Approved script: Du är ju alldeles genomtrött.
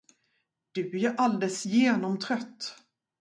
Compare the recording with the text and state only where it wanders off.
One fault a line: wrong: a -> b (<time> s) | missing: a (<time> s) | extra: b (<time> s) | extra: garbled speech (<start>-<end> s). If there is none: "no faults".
no faults